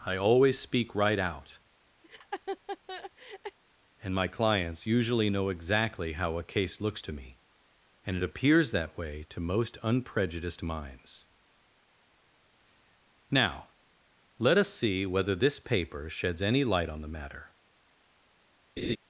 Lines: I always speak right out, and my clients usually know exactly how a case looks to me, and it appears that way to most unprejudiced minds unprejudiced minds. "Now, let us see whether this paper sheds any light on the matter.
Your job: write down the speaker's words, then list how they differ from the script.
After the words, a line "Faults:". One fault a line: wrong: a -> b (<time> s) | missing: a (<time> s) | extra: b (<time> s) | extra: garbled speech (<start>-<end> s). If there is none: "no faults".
I always speak right out, and my clients usually know exactly how a case looks to me, and it appears that way to most unprejudiced minds. "Now, let us see whether this paper sheds any light on the matter.
Faults:
missing: unprejudiced minds (11.3 s)